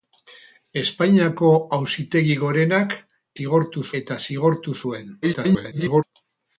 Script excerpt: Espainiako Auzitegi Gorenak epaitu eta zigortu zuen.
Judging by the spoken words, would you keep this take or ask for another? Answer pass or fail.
fail